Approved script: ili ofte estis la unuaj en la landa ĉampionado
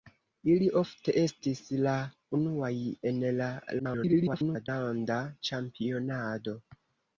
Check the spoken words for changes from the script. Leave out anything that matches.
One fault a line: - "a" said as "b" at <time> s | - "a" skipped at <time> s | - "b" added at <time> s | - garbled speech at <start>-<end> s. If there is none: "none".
- garbled speech at 3.8-4.7 s